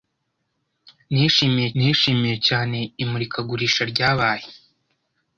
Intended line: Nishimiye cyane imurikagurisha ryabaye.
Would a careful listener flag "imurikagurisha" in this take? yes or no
no